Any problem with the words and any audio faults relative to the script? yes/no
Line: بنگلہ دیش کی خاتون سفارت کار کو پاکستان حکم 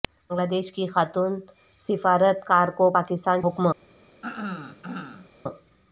yes